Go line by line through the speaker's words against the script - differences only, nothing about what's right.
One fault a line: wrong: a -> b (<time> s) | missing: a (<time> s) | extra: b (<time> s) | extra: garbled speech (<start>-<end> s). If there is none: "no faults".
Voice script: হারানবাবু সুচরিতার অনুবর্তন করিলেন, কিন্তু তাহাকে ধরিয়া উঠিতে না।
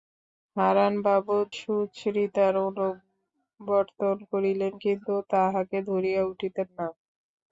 no faults